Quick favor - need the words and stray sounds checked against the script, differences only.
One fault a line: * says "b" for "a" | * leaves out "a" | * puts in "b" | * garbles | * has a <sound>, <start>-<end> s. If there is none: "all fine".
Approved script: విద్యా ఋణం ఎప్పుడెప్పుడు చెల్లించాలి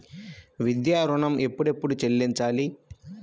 all fine